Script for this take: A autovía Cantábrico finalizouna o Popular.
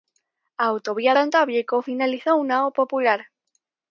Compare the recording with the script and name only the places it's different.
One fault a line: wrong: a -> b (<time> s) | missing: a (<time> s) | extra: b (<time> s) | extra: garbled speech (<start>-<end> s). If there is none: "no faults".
no faults